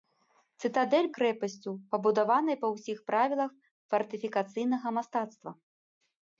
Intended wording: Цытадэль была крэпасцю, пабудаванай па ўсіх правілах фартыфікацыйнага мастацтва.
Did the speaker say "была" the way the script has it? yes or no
no